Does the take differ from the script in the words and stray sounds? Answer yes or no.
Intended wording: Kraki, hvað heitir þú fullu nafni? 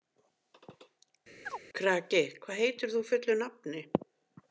yes